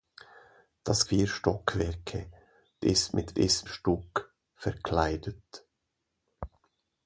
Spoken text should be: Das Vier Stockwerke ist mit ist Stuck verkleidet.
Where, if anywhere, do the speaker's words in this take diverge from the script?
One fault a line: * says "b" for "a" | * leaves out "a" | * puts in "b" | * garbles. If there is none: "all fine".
all fine